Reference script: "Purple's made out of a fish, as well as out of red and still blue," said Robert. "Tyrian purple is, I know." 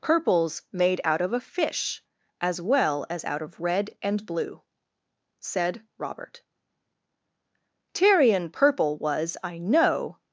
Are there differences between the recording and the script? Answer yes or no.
yes